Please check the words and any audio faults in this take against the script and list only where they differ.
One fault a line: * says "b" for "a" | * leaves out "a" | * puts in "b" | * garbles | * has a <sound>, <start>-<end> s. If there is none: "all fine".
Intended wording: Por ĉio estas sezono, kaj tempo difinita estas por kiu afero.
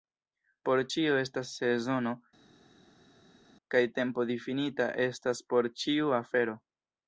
* says "ĉiu" for "kiu"